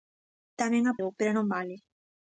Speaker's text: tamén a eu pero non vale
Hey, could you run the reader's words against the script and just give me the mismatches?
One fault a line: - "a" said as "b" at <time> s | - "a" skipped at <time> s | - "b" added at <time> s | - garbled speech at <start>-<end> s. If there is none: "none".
none